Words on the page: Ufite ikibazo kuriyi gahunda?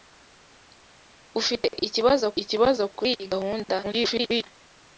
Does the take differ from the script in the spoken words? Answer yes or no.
yes